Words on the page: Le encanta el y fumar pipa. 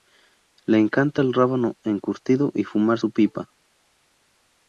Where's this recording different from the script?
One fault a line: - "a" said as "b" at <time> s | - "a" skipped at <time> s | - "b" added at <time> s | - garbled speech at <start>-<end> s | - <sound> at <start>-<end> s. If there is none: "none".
- "rábano encurtido" added at 1.3 s
- "su" added at 3.0 s